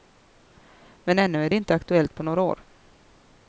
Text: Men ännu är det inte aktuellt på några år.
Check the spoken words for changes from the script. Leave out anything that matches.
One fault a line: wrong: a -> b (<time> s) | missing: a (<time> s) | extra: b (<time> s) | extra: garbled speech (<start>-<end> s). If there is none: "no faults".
no faults